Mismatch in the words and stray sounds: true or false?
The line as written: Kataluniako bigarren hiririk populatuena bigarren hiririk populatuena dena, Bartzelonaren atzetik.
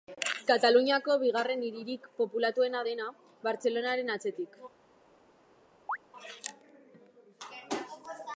true